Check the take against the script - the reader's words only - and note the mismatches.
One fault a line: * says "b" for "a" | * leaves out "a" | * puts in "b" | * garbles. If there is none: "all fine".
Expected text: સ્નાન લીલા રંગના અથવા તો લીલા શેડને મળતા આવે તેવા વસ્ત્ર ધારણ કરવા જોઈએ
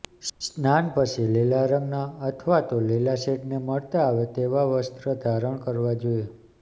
* puts in "પછી"